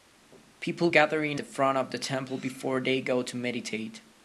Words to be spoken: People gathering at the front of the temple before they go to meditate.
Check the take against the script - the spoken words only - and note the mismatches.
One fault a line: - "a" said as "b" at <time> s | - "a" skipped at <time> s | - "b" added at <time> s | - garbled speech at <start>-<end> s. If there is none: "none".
- "at" skipped at 1.4 s